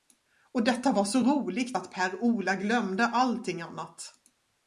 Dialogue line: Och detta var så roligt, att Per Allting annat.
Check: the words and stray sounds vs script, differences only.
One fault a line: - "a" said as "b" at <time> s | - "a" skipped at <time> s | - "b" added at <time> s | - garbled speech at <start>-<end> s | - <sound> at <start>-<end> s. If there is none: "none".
- "Ola glömde" added at 2.2 s